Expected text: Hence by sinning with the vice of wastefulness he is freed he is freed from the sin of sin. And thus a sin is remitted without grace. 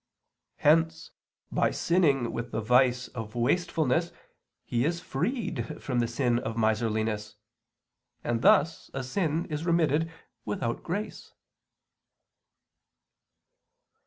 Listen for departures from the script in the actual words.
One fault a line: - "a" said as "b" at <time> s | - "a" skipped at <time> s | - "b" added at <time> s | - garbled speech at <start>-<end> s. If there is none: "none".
- "he is freed" skipped at 5.8 s
- "sin" said as "miserliness" at 6.6 s